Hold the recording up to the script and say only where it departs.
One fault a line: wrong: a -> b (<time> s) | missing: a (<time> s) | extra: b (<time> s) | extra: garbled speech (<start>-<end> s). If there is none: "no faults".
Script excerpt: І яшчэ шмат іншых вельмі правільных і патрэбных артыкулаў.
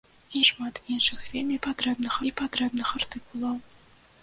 missing: яшчэ (0.4 s)
wrong: правільных -> патрэбных (1.7 s)